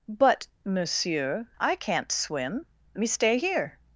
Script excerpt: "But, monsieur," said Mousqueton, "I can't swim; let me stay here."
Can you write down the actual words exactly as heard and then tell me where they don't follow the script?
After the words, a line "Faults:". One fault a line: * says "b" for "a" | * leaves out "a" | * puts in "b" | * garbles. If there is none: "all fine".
"But, monsieur," "I can't swim; me stay here."
Faults:
* leaves out "said Mousqueton"
* leaves out "let"